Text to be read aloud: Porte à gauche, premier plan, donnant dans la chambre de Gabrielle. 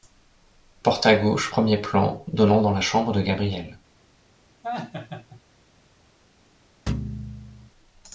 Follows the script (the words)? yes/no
yes